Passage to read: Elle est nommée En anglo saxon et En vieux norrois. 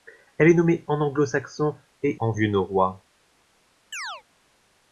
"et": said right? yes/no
yes